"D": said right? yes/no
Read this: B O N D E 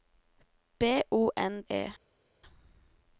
no